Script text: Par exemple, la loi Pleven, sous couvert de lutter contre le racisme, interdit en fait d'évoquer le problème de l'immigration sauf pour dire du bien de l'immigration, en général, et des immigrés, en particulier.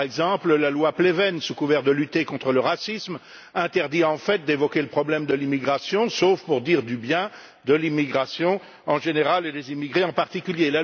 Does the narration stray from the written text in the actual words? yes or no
no